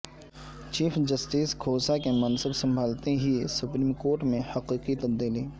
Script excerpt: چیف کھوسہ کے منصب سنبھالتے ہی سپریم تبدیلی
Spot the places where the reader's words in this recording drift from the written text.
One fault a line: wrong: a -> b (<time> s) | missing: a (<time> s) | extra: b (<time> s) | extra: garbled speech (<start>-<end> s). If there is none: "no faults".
extra: جسٹس (1.1 s)
extra: کورٹ میں حقیقی (3.9 s)